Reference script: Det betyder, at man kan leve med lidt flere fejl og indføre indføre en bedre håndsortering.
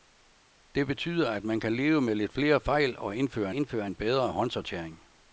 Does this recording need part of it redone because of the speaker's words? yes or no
no